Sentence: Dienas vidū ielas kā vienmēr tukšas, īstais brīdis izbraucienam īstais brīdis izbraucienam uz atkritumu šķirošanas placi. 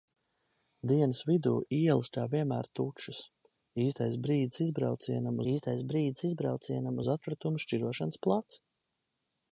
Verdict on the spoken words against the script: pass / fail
pass